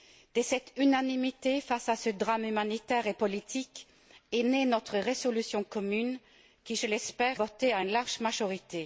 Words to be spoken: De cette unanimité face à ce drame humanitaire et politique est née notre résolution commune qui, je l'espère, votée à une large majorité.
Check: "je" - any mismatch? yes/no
no